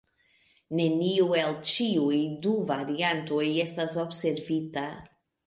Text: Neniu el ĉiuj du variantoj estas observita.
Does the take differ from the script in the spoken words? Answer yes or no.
no